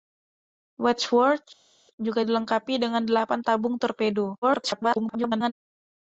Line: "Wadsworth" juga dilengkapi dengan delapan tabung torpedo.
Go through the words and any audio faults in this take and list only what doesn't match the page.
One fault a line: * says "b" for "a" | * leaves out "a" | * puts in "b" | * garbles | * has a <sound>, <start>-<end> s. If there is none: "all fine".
* garbles